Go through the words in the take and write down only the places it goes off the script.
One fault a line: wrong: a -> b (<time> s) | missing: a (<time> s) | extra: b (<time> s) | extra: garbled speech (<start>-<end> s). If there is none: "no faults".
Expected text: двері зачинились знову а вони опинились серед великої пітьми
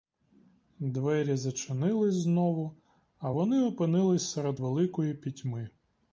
no faults